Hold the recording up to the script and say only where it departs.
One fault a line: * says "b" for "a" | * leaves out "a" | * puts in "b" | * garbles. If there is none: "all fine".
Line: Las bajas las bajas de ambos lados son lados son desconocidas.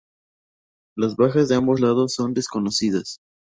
* leaves out "las bajas"
* leaves out "lados son"